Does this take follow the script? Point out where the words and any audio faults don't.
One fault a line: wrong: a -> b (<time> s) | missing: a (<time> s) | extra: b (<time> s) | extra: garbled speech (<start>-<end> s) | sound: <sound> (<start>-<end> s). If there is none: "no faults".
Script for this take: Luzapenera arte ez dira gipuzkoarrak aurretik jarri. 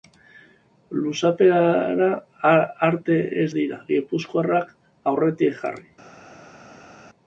no faults